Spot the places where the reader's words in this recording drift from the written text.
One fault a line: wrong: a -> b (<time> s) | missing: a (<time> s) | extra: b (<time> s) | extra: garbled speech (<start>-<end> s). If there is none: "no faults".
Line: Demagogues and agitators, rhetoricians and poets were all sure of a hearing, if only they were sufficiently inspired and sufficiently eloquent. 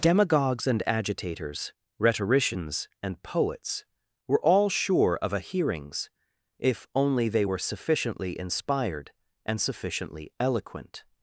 wrong: hearing -> hearings (5.4 s)